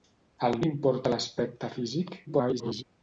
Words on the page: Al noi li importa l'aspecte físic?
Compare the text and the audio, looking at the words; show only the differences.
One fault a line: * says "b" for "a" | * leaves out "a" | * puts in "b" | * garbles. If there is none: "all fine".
* leaves out "noi"
* garbles